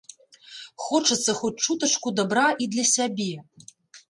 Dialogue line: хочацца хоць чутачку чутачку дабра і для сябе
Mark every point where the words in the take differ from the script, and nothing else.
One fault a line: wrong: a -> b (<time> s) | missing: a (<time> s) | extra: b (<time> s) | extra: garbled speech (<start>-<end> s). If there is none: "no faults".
missing: чутачку (2.1 s)